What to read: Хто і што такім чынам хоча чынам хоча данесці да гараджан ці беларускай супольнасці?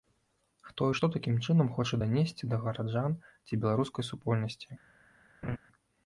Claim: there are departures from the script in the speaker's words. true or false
true